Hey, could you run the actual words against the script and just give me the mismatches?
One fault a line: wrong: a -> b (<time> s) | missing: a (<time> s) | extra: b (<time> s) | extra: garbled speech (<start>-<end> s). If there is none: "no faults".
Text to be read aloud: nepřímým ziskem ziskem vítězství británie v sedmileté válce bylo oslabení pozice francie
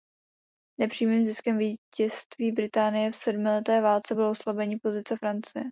missing: ziskem (1.6 s)